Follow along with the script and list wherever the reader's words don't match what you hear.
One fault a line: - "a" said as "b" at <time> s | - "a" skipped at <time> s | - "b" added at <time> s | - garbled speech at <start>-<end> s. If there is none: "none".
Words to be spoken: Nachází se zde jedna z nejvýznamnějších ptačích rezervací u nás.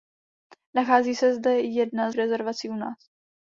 - "z nejvýznamnějších ptačích" skipped at 2.1 s